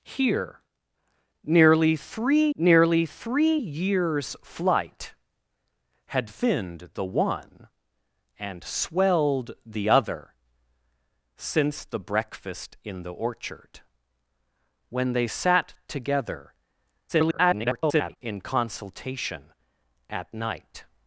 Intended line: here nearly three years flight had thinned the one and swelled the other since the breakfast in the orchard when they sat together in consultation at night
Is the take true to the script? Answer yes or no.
no